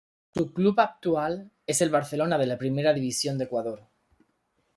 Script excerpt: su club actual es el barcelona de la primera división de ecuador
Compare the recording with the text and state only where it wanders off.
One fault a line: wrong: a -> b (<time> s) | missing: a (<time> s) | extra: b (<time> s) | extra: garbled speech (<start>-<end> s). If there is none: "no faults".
no faults